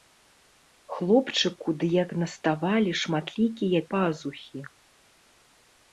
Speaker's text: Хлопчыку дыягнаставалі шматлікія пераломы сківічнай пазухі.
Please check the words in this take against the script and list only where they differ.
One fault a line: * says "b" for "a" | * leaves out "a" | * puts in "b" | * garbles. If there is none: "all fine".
* leaves out "пераломы сківічнай"